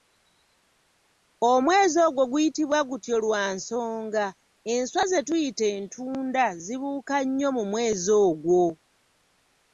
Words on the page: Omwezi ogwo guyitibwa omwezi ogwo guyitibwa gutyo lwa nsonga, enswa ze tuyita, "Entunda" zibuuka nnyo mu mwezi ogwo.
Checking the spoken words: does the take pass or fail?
fail